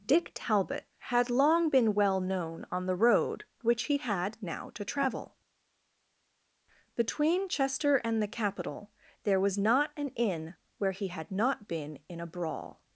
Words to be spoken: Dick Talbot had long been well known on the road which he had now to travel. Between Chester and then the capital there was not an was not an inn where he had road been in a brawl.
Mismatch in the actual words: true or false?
true